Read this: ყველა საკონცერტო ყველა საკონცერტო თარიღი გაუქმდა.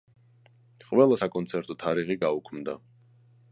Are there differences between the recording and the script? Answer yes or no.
yes